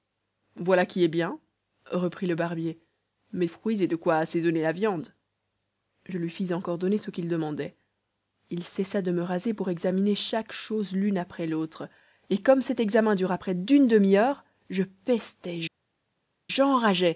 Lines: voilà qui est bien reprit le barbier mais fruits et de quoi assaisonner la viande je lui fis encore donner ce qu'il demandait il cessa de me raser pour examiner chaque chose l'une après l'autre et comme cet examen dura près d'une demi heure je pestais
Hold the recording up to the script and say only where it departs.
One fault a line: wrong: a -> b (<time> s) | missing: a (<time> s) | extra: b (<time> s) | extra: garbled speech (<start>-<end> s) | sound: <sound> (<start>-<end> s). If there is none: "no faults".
no faults